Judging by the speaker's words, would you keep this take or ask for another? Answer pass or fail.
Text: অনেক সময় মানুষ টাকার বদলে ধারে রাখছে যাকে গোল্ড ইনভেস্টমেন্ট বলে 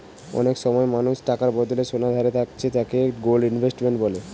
fail